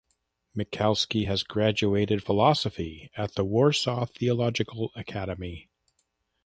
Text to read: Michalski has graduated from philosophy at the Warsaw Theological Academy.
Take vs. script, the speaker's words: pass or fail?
fail